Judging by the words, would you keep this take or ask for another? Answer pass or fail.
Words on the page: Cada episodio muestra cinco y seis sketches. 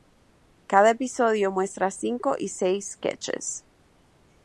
pass